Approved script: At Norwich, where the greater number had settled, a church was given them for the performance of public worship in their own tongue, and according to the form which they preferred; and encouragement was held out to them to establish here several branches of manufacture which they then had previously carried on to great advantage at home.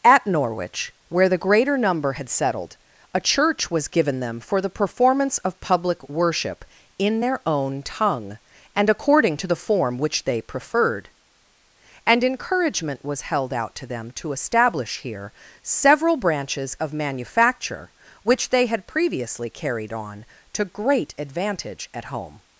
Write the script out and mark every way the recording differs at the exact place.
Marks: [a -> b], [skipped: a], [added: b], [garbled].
At Norwich, where the greater number had settled, a church was given them for the performance of public worship in their own tongue, and according to the form which they preferred; and encouragement was held out to them to establish here several branches of manufacture which they [skipped: then] had previously carried on to great advantage at home.